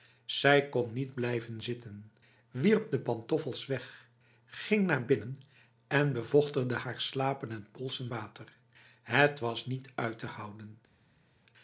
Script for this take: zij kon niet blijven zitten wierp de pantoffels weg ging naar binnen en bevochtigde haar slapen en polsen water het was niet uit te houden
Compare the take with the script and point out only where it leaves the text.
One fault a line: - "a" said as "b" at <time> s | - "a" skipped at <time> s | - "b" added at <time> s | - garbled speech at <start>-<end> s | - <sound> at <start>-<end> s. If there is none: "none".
none